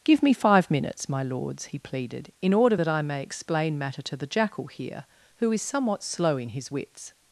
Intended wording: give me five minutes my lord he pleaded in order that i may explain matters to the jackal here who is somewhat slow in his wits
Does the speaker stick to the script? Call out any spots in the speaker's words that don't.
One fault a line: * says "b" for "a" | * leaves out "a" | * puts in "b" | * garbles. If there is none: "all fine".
* says "lords" for "lord"
* says "matter" for "matters"